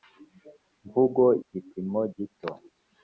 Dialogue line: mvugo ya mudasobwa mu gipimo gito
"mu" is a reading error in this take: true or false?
true